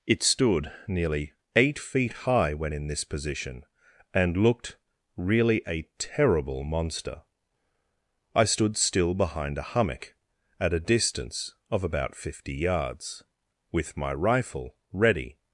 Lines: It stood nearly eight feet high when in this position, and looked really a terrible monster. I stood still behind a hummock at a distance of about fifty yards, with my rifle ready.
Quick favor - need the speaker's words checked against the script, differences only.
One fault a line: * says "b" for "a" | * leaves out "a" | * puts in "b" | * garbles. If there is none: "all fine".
all fine